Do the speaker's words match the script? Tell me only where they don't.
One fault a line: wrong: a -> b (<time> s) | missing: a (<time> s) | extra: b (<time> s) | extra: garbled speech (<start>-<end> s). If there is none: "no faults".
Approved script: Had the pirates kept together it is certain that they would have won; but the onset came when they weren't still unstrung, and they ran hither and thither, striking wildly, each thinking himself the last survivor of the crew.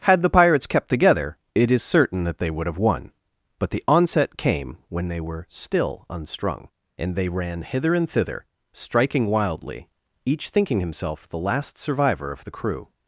wrong: weren't -> were (5.2 s)